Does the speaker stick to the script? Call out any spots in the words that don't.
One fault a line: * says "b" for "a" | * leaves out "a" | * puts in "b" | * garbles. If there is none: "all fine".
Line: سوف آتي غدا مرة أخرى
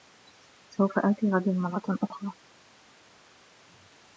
all fine